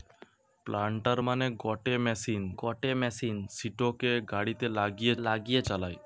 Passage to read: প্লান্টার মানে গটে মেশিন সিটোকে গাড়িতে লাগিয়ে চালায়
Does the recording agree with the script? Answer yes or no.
no